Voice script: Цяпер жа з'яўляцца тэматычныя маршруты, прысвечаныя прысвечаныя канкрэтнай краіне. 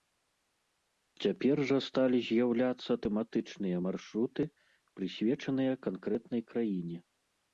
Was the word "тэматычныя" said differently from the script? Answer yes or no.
no